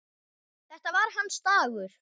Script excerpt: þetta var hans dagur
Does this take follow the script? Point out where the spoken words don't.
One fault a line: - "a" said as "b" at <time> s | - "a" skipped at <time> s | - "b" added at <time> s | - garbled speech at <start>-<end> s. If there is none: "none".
none